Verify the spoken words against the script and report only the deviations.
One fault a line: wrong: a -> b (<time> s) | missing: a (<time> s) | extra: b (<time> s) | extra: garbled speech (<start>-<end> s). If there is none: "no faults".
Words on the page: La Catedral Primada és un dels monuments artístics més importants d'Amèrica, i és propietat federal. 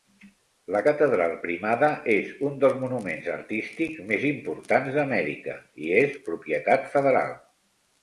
no faults